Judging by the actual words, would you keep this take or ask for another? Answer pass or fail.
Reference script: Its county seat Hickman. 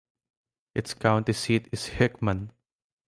fail